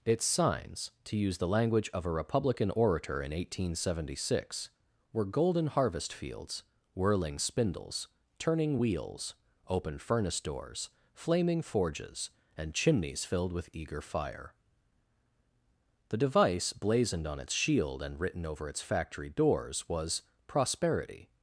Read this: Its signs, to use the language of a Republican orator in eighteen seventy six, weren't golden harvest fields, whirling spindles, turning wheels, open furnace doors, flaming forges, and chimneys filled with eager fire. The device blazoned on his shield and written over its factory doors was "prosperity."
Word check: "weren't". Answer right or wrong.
wrong